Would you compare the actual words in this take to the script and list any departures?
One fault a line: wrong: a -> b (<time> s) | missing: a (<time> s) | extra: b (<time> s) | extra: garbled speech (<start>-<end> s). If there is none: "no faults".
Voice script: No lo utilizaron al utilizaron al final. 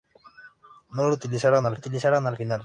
no faults